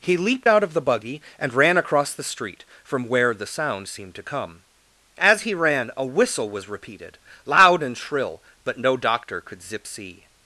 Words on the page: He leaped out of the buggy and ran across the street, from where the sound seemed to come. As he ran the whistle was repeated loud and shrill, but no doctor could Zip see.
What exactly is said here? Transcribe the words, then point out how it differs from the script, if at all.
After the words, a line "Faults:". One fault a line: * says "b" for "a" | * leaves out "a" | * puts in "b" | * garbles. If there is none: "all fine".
He leaped out of the buggy and ran across the street, from where the sound seemed to come. As he ran a whistle was repeated loud and shrill, but no doctor could Zip see.
Faults:
* says "a" for "the"